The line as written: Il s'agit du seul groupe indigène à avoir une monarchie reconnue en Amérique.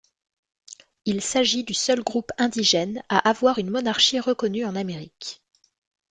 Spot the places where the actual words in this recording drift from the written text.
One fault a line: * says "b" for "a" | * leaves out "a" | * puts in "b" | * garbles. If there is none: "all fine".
all fine